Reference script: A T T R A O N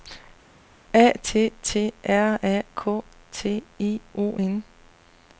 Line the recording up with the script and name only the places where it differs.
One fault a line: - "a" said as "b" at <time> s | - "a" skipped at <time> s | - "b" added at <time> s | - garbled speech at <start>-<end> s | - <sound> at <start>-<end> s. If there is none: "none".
- "K T I" added at 2.7 s